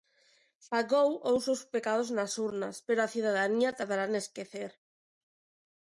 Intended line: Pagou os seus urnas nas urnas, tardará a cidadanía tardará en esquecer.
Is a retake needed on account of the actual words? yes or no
yes